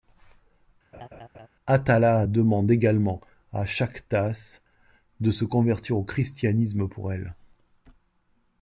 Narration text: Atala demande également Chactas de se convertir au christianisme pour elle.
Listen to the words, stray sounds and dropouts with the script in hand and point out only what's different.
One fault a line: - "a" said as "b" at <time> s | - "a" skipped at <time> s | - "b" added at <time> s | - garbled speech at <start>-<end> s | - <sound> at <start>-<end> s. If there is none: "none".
- laugh at 0.9-1.5 s
- "à" added at 3.5 s